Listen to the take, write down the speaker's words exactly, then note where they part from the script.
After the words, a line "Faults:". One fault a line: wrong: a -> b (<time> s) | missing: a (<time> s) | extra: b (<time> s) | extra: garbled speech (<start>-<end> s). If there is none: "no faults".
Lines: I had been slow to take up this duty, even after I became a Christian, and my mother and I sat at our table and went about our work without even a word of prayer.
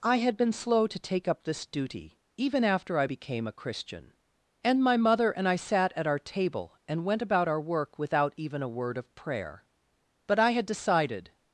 I had been slow to take up this duty, even after I became a Christian, and my mother and I sat at our table and went about our work without even a word of prayer. But I had decided
Faults:
extra: But I had decided (10.3 s)